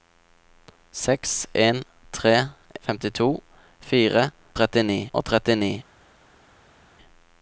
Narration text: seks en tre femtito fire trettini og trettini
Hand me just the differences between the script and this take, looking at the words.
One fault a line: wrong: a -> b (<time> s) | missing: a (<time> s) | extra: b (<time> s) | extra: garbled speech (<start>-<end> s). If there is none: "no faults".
no faults